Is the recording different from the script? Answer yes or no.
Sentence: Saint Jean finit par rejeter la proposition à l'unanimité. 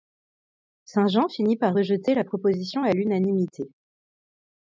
no